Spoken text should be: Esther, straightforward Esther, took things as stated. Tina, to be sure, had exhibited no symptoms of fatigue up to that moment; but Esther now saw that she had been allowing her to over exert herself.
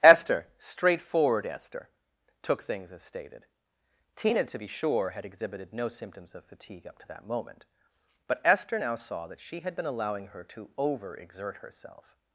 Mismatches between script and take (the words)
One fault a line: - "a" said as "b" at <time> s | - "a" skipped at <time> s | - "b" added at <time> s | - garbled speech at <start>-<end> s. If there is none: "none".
none